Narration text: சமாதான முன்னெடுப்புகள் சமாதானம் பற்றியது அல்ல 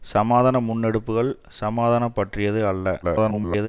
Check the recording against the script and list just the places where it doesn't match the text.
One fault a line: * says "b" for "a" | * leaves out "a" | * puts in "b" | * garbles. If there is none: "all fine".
* garbles